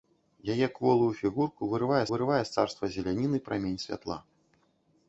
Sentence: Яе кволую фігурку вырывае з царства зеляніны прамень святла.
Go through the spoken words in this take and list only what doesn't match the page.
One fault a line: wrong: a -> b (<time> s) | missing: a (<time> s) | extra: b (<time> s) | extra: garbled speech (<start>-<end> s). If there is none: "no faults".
extra: вырывае (2.1 s)